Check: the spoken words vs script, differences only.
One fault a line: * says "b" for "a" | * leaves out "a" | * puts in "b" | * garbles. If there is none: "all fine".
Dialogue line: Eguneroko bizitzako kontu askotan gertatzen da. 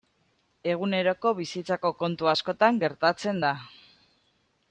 all fine